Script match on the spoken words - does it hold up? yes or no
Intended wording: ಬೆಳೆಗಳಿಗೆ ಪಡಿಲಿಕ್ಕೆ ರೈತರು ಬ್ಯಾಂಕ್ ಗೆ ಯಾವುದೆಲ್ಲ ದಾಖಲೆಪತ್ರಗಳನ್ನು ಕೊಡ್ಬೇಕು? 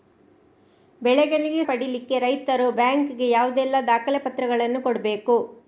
yes